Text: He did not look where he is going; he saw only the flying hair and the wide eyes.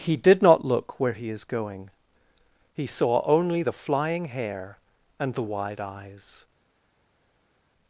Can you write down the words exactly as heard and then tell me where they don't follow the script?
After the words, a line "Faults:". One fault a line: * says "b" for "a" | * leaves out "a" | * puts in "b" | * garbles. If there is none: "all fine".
He did not look where he is going; he saw only the flying hair and the wide eyes.
Faults:
all fine